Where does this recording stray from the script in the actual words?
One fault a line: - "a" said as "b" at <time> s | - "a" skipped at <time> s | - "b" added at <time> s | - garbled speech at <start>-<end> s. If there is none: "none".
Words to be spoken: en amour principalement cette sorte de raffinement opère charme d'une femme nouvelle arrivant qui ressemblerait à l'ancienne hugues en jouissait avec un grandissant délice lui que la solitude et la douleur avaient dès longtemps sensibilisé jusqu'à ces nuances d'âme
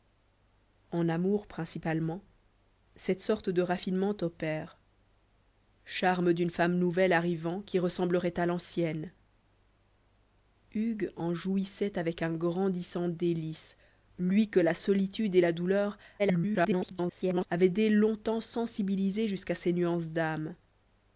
- garbled speech at 16.2-17.5 s